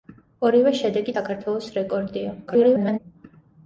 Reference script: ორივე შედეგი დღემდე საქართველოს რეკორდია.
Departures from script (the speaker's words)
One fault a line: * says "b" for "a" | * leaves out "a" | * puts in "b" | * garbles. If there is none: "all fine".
* leaves out "დღემდე"
* garbles